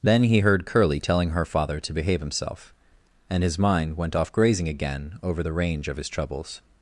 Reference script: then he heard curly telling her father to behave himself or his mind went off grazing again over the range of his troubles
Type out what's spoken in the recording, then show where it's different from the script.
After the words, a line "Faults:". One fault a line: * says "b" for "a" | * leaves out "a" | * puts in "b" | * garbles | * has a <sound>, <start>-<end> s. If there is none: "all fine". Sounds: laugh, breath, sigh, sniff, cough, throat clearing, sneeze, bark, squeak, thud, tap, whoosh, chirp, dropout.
then he heard curly telling her father to behave himself and his mind went off grazing again over the range of his troubles
Faults:
* says "and" for "or"